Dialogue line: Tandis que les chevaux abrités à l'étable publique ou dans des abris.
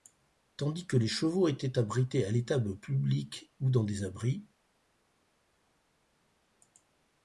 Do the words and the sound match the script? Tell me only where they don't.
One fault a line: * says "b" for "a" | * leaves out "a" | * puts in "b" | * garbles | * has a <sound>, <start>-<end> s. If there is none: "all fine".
* puts in "étaient"